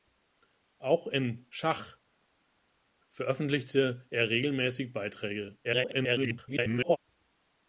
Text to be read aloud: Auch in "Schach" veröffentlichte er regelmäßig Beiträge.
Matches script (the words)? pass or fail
fail